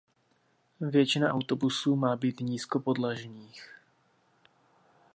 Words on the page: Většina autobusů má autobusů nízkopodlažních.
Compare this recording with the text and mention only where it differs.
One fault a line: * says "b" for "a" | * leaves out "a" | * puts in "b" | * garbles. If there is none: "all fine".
* says "být" for "autobusů"